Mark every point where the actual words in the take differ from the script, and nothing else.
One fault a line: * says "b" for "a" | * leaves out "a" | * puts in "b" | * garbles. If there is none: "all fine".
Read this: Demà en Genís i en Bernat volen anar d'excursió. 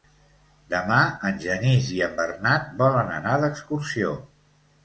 all fine